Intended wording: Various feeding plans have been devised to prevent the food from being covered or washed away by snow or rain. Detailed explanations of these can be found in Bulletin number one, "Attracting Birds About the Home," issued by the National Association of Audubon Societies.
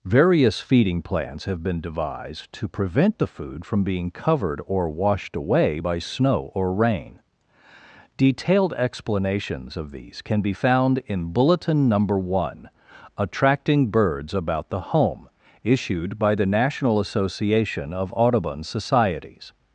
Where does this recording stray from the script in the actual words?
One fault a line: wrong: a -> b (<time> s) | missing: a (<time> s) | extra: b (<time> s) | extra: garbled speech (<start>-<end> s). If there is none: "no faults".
no faults